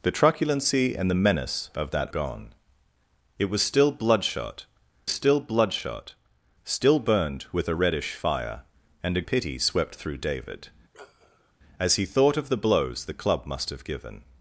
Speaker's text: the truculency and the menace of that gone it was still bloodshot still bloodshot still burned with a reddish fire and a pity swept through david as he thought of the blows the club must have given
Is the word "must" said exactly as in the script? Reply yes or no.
yes